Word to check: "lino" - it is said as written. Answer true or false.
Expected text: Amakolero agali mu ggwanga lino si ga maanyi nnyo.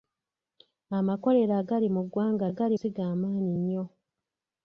false